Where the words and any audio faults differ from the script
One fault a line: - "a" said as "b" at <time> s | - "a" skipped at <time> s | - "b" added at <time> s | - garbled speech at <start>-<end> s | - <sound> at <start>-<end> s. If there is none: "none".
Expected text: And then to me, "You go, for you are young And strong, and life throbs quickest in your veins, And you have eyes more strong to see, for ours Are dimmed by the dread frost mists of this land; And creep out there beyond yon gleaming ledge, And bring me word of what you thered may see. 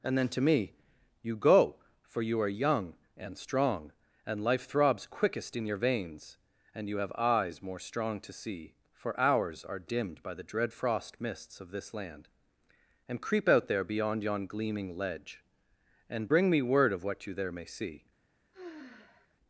- "thered" said as "there" at 17.3 s
- sigh at 18.5-19.3 s